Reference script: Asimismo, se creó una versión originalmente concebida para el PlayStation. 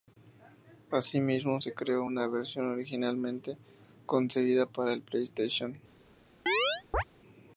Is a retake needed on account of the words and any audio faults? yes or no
yes